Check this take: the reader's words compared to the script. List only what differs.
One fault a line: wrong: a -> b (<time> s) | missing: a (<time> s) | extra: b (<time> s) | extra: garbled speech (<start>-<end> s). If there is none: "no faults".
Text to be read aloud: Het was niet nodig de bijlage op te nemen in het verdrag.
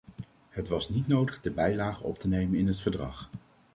no faults